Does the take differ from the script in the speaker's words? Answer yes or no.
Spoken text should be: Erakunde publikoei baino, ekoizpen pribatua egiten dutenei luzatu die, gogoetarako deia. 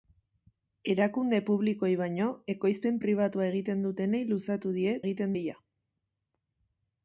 yes